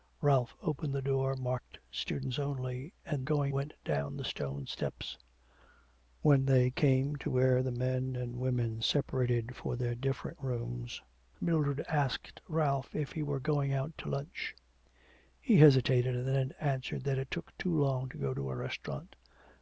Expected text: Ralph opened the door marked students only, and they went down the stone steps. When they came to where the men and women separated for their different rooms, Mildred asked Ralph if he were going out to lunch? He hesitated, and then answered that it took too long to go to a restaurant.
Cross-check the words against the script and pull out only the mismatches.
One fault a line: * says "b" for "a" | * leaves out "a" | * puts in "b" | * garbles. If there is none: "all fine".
* says "going" for "they"